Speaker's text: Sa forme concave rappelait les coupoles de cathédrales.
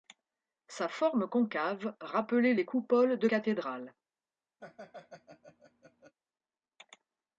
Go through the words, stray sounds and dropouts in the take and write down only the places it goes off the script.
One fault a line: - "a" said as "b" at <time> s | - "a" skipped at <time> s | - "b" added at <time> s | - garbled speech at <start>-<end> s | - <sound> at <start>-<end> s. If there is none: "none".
- laugh at 4.6-6.1 s